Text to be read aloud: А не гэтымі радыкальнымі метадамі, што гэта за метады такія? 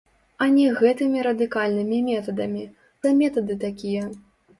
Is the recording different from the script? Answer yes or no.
yes